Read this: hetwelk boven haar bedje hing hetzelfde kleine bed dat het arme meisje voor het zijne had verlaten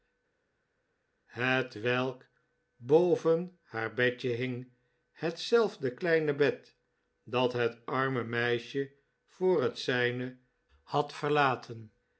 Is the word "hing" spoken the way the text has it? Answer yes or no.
yes